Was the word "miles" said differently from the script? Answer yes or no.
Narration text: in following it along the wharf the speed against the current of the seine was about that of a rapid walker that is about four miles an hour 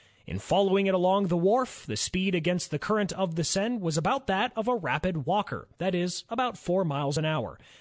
no